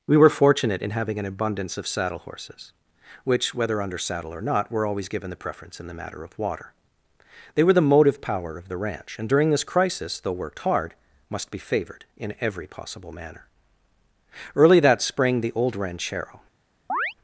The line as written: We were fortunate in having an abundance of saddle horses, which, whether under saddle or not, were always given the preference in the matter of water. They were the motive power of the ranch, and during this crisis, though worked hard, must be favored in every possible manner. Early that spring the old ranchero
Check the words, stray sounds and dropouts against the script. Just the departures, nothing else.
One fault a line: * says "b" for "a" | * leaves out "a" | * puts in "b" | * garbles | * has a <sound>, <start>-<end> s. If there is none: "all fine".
* has a chirp, 16.9-17.1 s